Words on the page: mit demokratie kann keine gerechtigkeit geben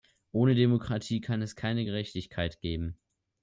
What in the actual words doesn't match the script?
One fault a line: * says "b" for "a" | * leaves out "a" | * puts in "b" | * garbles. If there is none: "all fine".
* says "ohne" for "mit"
* puts in "es"